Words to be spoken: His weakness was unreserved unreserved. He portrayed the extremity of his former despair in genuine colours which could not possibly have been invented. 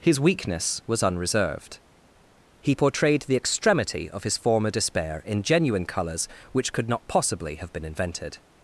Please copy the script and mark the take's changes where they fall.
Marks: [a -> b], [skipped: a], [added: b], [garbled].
His weakness was unreserved [skipped: unreserved.] He portrayed the extremity of his former despair in genuine colours which could not possibly have been invented.